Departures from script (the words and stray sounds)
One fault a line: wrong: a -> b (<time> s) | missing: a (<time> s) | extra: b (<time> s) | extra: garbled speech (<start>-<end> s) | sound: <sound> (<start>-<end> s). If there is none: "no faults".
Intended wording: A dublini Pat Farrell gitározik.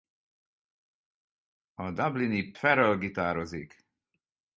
missing: Pat (2.5 s)